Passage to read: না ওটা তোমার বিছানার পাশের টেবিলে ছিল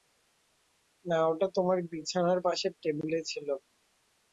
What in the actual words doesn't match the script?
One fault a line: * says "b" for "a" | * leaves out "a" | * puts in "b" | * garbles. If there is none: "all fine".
all fine